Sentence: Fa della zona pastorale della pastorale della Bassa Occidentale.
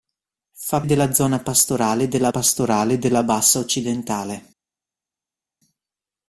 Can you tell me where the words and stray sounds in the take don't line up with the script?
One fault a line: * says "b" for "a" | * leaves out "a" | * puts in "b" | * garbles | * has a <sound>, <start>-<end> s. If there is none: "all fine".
all fine